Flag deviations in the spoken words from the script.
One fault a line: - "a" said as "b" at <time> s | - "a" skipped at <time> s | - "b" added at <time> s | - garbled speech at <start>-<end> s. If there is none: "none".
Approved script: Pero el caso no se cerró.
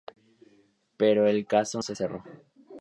- "no" skipped at 1.8 s